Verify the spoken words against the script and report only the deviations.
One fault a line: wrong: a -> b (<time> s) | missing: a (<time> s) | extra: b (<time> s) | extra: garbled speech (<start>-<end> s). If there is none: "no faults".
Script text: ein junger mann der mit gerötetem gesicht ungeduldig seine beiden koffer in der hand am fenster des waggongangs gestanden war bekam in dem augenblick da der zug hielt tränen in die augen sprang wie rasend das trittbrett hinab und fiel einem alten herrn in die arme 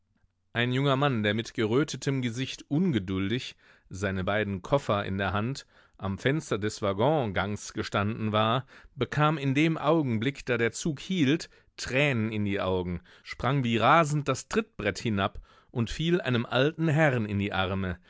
no faults